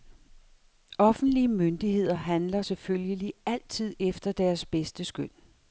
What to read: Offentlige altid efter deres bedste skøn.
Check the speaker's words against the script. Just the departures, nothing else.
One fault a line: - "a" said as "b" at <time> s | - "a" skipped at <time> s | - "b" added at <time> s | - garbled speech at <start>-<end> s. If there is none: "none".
- "myndigheder handler selvfølgelig" added at 1.5 s